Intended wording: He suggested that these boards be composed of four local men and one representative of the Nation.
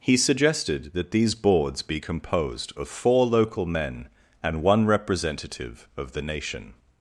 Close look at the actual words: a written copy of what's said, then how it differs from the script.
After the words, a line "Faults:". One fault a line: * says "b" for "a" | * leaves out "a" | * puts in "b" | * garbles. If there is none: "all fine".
He suggested that these boards be composed of four local men and one representative of the Nation.
Faults:
all fine